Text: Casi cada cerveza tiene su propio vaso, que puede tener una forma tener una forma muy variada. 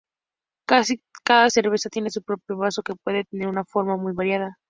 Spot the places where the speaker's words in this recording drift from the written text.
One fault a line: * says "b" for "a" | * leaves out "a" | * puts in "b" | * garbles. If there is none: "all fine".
* leaves out "tener una forma"